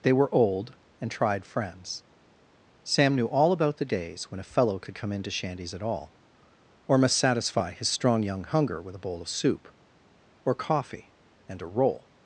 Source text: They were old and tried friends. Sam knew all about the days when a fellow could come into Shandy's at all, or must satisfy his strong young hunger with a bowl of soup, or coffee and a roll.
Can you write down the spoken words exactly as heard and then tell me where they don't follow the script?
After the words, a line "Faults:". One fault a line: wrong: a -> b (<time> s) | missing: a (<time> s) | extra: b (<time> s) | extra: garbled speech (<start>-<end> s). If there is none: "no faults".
They were old and tried friends. Sam knew all about the days when a fellow could come into Shandy's at all, or must satisfy his strong young hunger with a bowl of soup, or coffee and a roll.
Faults:
no faults